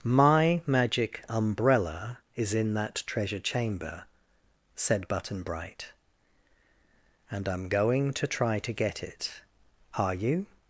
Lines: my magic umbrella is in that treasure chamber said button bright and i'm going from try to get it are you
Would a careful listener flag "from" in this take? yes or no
yes